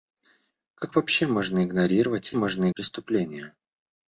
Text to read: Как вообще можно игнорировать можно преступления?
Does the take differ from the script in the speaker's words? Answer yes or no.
no